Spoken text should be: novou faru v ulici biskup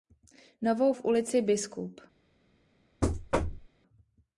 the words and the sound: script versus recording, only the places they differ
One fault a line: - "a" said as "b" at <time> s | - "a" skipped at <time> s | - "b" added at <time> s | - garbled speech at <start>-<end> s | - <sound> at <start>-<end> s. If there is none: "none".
- "faru" skipped at 0.9 s
- thud at 3.0-3.7 s